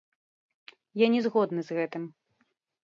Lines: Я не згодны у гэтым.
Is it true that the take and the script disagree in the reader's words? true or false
true